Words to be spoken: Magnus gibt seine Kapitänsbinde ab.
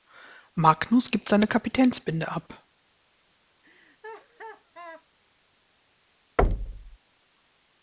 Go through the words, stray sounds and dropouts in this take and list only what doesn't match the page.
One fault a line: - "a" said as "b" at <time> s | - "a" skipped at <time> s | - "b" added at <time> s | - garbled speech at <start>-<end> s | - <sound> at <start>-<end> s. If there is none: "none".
- laugh at 3.6-5.1 s
- thud at 6.4-7.0 s